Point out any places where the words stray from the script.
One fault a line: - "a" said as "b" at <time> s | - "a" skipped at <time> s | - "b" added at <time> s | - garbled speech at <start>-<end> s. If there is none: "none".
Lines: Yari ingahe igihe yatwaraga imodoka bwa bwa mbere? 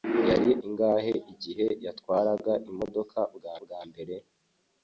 none